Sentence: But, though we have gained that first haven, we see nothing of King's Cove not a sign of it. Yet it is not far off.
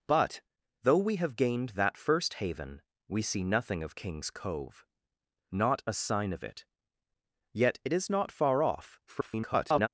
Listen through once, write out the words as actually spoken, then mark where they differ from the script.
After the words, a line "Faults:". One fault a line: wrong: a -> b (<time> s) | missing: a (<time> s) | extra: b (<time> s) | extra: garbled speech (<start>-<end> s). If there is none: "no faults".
But, though we have gained that first haven, we see nothing of King's Cove not a sign of it. Yet it is not far off. [garbled]
Faults:
extra: garbled speech (9.1-9.9 s)